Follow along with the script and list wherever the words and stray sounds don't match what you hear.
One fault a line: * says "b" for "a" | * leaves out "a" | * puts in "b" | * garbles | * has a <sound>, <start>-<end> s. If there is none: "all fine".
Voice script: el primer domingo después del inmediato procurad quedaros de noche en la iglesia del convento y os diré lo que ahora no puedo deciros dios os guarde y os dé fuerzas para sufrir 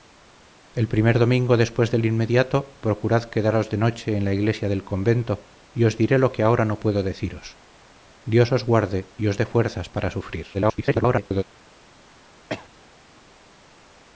* garbles
* has a cough, 12.5-12.7 s